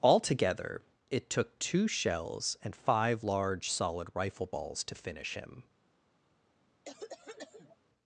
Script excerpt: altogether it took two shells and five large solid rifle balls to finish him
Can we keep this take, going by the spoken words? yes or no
yes